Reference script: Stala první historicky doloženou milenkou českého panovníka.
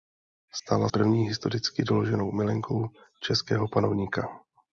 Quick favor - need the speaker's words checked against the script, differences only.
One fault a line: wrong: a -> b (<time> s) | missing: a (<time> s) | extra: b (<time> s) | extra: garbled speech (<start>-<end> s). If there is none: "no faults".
no faults